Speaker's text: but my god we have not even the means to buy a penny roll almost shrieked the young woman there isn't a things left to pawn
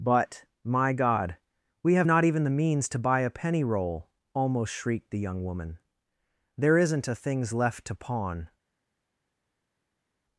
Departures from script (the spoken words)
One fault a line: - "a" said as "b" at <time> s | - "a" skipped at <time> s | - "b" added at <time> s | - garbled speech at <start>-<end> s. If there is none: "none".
none